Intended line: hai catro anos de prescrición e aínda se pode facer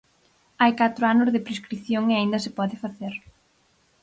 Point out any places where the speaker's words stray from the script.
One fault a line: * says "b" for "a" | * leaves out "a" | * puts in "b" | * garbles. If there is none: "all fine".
all fine